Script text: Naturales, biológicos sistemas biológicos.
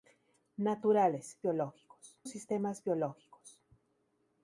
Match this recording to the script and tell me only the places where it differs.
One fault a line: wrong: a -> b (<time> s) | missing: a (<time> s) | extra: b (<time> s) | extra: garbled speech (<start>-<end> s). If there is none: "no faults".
no faults